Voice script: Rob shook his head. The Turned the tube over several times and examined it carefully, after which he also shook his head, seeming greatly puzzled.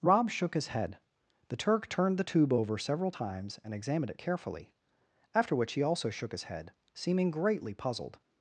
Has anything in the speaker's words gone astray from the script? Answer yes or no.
yes